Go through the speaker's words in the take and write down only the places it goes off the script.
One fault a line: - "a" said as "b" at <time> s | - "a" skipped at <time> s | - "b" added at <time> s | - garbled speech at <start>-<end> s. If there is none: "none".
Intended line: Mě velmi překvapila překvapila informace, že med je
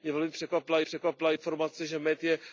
none